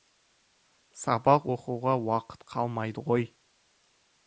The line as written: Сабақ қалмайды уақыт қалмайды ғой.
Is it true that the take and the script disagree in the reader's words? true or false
true